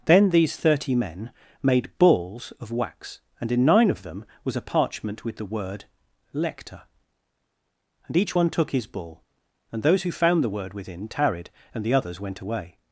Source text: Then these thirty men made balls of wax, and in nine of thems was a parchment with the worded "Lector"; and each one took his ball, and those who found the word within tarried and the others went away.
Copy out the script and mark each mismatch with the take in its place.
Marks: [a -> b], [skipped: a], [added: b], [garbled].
Then these thirty men made balls of wax, and in nine of [thems -> them] was a parchment with the [worded -> word] "Lector"; and each one took his ball, and those who found the word within tarried and the others went away.